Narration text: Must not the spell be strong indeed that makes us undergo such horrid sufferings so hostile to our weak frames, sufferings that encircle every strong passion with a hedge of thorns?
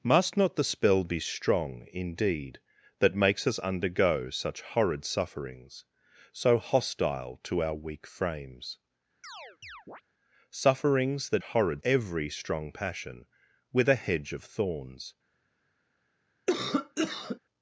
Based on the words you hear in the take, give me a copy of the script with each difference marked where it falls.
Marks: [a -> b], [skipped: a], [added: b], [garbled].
Must not the spell be strong indeed that makes us undergo such horrid sufferings so hostile to our weak frames, sufferings that [encircle -> horrid] every strong passion with a hedge of thorns?